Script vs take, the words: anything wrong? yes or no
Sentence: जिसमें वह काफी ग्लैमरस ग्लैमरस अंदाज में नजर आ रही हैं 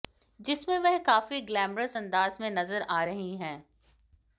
yes